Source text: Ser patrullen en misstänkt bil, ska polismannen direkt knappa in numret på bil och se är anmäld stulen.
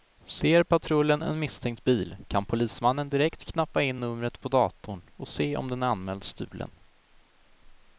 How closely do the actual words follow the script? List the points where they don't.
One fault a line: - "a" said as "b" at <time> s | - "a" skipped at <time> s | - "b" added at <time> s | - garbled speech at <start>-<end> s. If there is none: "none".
- "ska" said as "kan" at 2.3 s
- "bil" said as "datorn" at 4.5 s
- "om den" added at 5.6 s